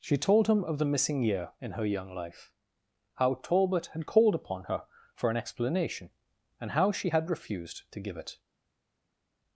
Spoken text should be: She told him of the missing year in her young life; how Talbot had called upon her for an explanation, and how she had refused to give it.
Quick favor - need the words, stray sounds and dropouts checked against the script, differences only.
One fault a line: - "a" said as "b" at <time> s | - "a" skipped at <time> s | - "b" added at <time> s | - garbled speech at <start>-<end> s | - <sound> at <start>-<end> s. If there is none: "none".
none